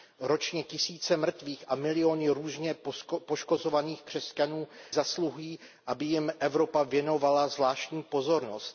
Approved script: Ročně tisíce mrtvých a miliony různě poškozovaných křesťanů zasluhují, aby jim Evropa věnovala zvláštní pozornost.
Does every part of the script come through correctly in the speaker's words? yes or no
yes